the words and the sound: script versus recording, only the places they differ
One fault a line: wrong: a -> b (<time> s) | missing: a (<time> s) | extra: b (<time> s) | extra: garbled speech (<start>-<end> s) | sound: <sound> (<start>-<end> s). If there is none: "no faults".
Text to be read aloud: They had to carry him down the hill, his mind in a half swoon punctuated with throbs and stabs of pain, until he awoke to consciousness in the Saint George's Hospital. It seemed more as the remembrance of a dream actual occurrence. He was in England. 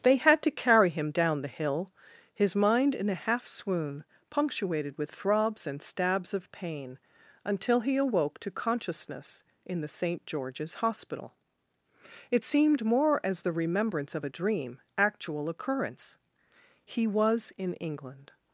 no faults